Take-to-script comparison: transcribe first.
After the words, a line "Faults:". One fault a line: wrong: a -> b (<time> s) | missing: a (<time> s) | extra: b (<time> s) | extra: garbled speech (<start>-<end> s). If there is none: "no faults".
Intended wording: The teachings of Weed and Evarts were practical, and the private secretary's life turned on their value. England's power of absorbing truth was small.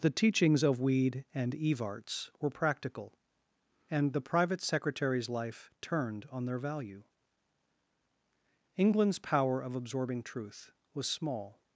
The teachings of Weed and Evarts were practical, and the private secretary's life turned on their value. England's power of absorbing truth was small.
Faults:
no faults